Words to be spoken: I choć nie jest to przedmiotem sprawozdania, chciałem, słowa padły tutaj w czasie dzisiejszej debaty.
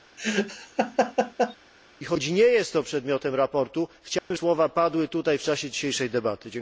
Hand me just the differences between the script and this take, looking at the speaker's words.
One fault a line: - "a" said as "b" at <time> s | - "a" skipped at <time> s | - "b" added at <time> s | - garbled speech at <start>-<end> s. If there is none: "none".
none